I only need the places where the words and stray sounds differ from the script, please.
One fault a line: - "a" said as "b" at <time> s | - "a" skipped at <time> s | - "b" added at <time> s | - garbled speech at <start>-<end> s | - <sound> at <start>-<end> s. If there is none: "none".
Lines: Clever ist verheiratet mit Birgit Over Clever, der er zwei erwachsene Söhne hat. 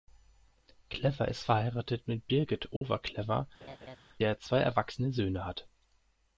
- dropout at 2.8-2.8 s
- laugh at 3.6-4.0 s